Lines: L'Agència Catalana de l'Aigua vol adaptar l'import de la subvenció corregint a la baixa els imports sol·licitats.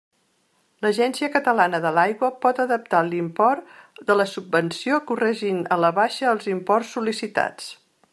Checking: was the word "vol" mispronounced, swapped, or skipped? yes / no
yes